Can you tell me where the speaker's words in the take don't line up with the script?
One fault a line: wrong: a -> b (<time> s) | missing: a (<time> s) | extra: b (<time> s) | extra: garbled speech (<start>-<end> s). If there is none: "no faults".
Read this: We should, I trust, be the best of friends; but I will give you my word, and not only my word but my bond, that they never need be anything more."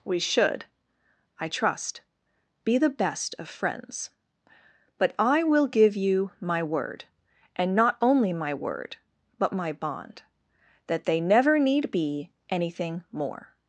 no faults